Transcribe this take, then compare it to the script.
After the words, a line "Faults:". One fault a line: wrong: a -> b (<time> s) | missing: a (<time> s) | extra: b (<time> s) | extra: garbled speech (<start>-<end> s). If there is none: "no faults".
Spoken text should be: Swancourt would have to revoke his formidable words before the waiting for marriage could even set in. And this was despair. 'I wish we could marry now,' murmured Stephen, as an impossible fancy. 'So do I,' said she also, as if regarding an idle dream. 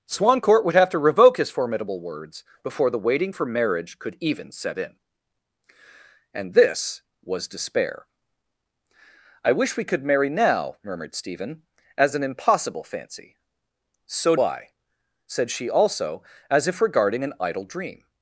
Swancourt would have to revoke his formidable words before the waiting for marriage could even set in. And this was despair. 'I wish we could marry now,' murmured Stephen, as an impossible fancy. 'So I,' said she also, as if regarding an idle dream.
Faults:
missing: do (14.4 s)